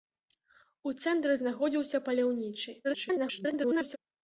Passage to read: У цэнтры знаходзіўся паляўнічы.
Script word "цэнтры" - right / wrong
right